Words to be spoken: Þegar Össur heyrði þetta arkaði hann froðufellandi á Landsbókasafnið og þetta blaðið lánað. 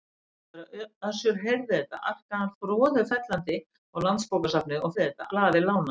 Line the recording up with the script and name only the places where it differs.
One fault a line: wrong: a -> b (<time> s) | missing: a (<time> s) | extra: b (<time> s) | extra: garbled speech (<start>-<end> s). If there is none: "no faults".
no faults